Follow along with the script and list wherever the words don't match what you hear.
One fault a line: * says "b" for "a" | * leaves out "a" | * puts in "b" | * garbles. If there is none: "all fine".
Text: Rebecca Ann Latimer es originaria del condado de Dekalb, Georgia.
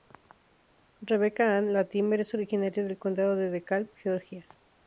all fine